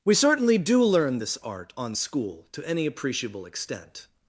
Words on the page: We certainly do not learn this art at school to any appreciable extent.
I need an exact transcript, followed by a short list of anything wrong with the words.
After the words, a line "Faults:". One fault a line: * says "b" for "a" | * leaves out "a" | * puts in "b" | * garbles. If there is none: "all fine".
We certainly do learn this art on school to any appreciable extent.
Faults:
* leaves out "not"
* says "on" for "at"